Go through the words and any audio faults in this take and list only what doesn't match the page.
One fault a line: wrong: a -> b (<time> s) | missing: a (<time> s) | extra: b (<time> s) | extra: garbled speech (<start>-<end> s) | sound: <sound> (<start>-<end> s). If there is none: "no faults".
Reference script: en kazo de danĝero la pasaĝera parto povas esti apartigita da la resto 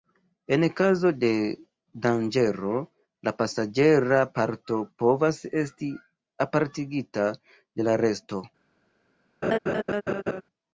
wrong: da -> de (7.5 s)
sound: laugh (9.4-10.4 s)